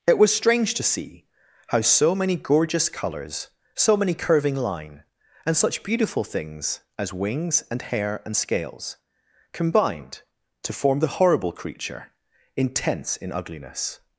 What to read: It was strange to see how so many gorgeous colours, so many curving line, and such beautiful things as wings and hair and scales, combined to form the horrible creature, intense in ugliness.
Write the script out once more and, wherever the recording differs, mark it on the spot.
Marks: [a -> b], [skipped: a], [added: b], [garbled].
It was strange to see how so many gorgeous colours, so many curving line, and such beautiful things as wings and hair and scales, combined to form the horrible creature, intense in ugliness.